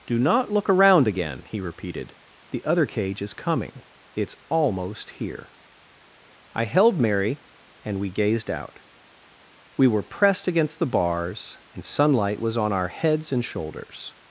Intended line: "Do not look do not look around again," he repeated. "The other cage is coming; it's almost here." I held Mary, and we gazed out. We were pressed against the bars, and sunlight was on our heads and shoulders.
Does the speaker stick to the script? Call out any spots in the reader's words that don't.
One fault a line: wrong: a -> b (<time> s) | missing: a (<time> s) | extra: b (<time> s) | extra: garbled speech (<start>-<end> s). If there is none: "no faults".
missing: do not look (0.7 s)